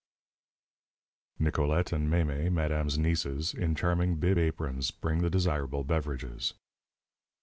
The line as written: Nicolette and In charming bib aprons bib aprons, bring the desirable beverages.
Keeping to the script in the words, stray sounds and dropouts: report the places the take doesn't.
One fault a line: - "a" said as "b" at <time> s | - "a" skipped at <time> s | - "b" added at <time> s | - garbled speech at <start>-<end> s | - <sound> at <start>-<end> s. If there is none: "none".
- "Mémé madame's nieces" added at 2.1 s
- "bib aprons" skipped at 4.9 s